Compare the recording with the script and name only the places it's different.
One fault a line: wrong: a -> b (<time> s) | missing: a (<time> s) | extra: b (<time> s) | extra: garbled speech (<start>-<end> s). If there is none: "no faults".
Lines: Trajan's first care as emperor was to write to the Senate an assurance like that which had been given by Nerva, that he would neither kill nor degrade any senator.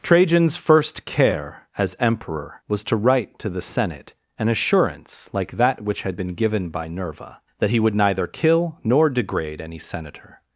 no faults